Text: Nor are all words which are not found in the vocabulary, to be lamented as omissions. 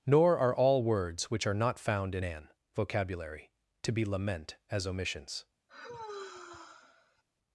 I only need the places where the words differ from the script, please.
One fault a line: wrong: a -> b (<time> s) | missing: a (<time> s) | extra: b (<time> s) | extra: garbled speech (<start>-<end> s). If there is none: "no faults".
wrong: the -> an (2.2 s)
wrong: lamented -> lament (4.0 s)